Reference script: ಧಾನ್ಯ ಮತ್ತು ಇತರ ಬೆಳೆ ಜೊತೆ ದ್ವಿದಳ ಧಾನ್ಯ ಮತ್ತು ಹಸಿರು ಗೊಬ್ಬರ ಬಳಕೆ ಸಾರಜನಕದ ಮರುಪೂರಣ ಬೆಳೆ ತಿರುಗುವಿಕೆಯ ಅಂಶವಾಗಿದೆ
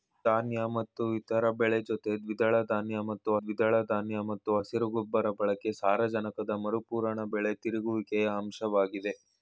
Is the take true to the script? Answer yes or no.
no